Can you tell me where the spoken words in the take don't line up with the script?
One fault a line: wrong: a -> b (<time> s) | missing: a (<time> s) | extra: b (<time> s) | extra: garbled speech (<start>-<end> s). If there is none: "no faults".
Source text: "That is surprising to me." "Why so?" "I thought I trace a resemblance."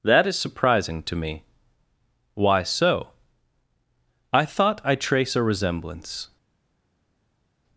no faults